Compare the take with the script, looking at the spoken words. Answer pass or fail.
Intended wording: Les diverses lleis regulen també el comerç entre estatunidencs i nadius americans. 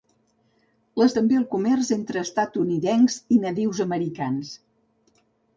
fail